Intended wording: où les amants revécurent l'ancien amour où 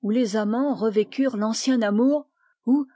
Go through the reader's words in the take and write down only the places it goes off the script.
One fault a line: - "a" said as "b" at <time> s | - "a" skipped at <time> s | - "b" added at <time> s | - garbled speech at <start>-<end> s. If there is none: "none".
none